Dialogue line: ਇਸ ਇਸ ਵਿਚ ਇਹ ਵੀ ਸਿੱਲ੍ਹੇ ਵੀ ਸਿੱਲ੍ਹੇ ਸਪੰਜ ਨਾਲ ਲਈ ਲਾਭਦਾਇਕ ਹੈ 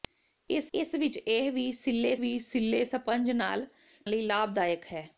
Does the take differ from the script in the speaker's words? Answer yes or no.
no